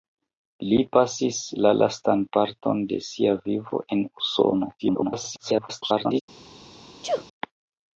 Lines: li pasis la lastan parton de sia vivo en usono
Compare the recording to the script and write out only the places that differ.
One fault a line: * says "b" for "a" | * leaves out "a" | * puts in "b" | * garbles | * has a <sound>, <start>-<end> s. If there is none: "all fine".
* garbles
* has a sneeze, 7.0-7.3 s